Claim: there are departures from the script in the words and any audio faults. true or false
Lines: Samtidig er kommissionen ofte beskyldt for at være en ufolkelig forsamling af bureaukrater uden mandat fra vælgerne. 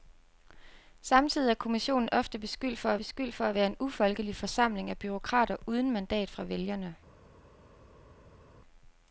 true